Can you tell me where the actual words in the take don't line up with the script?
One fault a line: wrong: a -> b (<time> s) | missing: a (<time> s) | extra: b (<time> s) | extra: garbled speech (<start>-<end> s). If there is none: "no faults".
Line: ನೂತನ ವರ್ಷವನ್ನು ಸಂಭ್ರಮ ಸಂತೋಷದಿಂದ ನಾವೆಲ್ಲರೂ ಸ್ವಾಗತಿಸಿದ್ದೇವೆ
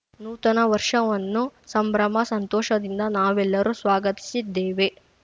no faults